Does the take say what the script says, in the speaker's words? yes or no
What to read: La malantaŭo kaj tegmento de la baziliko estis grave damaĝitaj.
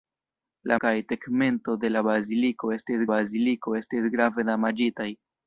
no